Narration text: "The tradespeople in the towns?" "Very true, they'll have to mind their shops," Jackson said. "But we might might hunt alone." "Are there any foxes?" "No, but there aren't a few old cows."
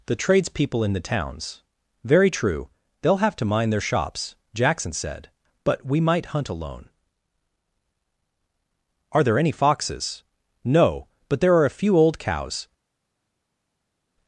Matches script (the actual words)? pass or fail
fail